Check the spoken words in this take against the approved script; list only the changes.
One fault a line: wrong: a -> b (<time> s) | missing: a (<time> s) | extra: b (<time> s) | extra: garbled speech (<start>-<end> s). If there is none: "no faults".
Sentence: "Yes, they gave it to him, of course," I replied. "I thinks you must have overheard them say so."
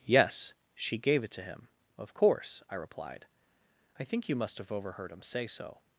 wrong: they -> she (0.7 s)
wrong: thinks -> think (4.0 s)
wrong: them -> him (5.1 s)